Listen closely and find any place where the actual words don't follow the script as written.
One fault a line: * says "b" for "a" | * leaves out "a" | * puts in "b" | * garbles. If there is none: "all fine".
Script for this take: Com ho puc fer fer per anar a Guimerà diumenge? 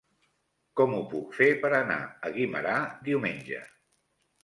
* leaves out "fer"